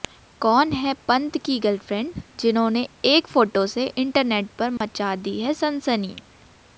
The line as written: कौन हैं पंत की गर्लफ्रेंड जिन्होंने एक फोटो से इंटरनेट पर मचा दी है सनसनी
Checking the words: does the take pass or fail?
pass